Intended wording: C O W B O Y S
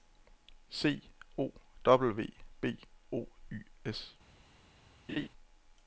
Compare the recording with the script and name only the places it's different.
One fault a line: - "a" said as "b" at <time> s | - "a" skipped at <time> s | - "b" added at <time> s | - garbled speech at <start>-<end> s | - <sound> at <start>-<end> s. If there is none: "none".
- laugh at 5.1-5.3 s